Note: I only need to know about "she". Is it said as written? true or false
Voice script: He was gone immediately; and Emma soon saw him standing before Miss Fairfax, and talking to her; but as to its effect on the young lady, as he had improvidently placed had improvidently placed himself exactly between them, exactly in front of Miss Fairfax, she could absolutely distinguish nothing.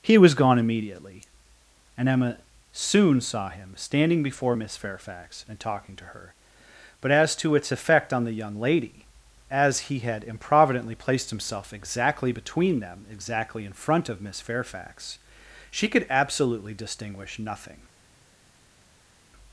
true